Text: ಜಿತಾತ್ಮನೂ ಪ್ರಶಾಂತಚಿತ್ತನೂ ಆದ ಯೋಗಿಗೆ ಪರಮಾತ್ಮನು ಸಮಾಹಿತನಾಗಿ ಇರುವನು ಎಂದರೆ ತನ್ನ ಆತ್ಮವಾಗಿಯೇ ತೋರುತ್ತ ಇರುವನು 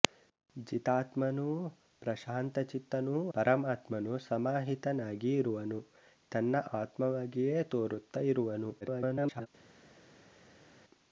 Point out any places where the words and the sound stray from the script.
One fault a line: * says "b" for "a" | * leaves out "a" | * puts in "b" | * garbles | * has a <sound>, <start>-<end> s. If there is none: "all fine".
* leaves out "ಆದ ಯೋಗಿಗೆ"
* leaves out "ಎಂದರೆ"
* garbles